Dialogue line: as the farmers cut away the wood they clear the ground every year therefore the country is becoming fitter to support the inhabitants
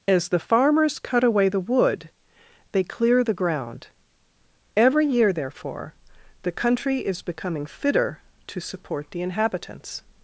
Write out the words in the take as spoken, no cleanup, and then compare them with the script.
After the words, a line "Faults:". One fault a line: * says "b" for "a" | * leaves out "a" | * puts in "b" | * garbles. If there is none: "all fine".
as the farmers cut away the wood they clear the ground every year therefore the country is becoming fitter to support the inhabitants
Faults:
all fine